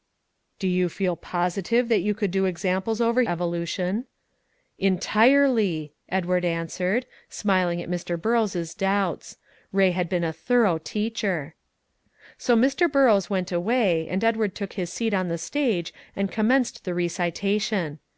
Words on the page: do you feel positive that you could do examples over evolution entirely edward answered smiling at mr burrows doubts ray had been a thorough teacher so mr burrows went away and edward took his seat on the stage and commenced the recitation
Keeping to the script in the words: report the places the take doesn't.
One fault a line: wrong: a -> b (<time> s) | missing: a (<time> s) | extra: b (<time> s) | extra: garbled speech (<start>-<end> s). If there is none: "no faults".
no faults